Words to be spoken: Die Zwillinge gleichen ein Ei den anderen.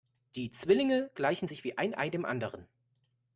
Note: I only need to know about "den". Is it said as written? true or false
false